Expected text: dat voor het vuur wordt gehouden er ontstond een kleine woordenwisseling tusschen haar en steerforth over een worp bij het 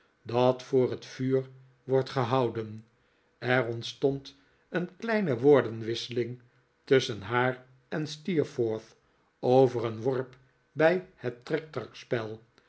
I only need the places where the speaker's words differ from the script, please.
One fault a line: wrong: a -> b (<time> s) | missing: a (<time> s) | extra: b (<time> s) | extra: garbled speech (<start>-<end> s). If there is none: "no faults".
no faults